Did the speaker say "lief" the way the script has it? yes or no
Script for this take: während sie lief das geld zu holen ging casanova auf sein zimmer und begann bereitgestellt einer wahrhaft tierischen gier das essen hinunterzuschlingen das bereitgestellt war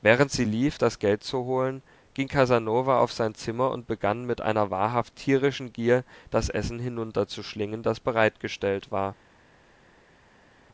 yes